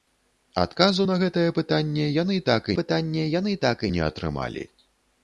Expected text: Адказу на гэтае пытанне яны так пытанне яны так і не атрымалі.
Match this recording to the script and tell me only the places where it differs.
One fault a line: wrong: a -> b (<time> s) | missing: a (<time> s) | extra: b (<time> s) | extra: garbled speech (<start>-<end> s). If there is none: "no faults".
no faults